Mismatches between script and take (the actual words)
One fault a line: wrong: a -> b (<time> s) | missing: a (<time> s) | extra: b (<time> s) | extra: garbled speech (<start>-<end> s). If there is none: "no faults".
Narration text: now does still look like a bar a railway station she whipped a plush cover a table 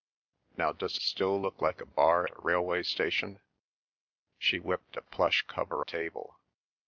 no faults